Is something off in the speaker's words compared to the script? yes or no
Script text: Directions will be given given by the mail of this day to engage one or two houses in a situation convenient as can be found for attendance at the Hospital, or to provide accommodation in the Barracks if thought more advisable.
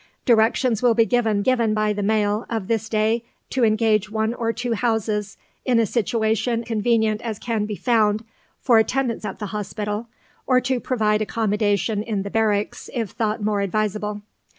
no